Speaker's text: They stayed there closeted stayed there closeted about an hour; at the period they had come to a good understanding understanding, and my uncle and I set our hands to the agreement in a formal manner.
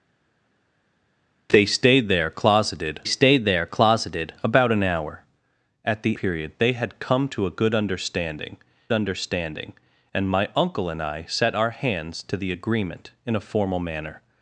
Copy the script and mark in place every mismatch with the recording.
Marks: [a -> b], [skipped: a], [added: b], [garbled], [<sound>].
They stayed there closeted stayed there closeted about an hour; at the period they had come to a good understanding understanding, and my uncle and I set our hands to the agreement in a formal manner.